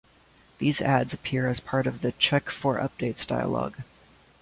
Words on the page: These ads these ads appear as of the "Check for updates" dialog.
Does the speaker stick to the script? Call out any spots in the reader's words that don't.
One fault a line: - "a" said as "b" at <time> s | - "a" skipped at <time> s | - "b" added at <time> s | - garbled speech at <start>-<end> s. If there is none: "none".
- "these ads" skipped at 1.1 s
- "part" added at 1.6 s